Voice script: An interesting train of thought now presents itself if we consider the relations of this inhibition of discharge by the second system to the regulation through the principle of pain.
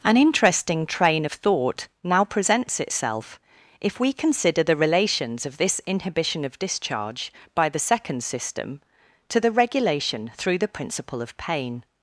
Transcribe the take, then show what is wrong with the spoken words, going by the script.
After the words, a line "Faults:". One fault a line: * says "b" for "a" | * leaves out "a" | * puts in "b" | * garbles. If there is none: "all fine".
An interesting train of thought now presents itself if we consider the relations of this inhibition of discharge by the second system to the regulation through the principle of pain.
Faults:
all fine